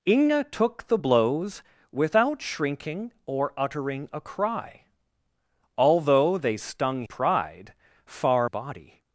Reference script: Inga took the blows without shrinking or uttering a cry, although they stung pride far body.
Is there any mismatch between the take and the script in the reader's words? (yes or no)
no